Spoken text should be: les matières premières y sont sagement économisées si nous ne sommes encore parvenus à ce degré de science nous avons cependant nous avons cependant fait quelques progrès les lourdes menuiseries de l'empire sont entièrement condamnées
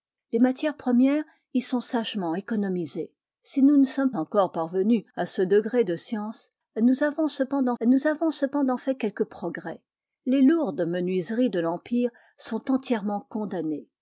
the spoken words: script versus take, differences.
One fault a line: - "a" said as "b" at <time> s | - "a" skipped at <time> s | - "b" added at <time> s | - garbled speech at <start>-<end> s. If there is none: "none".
none